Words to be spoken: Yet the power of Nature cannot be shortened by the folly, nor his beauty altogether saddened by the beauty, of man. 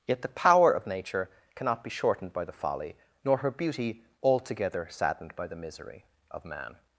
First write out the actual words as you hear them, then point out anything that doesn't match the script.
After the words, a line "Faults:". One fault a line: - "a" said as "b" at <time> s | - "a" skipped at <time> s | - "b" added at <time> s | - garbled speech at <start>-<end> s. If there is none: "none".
Yet the power of Nature cannot be shortened by the folly, nor her beauty altogether saddened by the misery, of man.
Faults:
- "his" said as "her" at 3.4 s
- "beauty" said as "misery" at 5.6 s